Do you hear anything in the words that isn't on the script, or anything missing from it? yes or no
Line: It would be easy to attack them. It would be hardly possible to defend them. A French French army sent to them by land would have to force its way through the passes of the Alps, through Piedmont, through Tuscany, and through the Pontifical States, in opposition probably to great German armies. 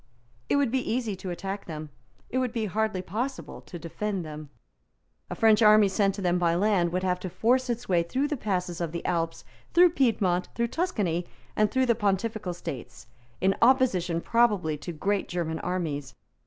yes